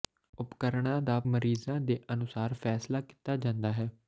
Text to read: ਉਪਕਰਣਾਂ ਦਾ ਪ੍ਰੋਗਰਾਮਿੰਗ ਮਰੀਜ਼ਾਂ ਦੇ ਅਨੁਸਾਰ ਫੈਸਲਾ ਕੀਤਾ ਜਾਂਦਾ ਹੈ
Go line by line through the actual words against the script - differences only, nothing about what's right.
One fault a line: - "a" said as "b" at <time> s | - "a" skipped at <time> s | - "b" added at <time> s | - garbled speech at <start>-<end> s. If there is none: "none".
- "ਪ੍ਰੋਗਰਾਮਿੰਗ" skipped at 1.2 s